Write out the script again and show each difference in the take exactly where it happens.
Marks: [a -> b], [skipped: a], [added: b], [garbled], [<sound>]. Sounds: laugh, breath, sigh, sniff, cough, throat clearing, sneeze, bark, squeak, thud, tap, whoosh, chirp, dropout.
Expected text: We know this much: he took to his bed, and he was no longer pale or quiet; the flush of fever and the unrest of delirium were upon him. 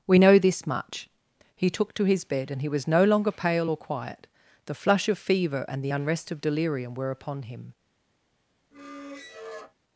We know this much: he took to his bed, and he was no longer pale or quiet; the flush of fever and the unrest of delirium were upon him. [squeak]